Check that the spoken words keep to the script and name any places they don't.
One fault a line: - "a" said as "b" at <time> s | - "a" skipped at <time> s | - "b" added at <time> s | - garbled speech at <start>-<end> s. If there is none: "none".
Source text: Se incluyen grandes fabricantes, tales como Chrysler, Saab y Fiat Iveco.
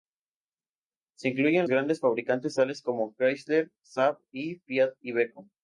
none